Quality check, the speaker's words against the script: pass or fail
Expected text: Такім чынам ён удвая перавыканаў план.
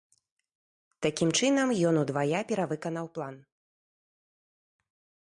pass